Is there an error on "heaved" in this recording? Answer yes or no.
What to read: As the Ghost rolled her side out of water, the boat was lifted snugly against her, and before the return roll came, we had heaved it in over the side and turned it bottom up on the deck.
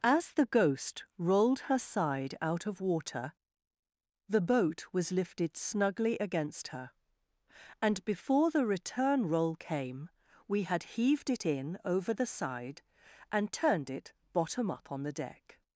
no